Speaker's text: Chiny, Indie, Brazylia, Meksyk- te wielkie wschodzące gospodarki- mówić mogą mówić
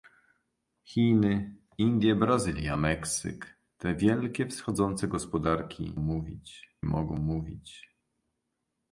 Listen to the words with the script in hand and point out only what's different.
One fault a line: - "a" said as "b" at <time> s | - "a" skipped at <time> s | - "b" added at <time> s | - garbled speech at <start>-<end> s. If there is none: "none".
none